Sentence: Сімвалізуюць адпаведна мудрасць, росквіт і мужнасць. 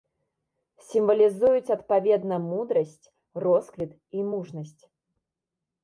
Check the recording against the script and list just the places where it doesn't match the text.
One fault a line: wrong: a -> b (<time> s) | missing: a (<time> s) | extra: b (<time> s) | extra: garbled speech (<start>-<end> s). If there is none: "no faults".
no faults